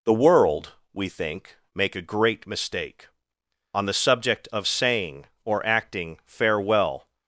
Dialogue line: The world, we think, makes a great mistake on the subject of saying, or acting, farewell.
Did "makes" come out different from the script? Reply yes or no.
yes